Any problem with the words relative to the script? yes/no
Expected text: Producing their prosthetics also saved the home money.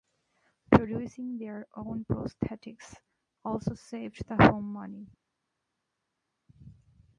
yes